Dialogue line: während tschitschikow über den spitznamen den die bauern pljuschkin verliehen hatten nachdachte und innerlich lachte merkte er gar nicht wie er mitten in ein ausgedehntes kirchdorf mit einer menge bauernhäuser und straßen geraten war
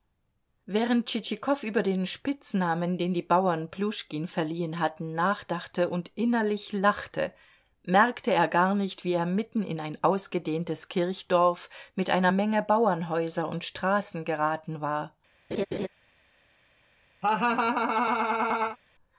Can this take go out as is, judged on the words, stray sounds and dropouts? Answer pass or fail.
fail